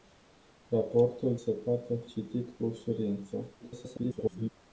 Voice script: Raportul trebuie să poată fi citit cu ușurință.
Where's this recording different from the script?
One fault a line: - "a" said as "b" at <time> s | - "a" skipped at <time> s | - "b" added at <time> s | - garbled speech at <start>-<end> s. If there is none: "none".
- "trebuie" skipped at 1.4 s
- "fi" skipped at 1.9 s
- garbled speech at 3.6-4.5 s